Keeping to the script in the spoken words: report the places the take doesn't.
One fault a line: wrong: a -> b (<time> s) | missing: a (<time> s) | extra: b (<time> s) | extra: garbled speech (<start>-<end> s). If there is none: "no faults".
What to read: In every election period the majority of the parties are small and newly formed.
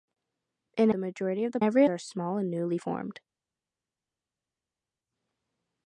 missing: every election period (0.9 s)
wrong: parties -> every (1.6 s)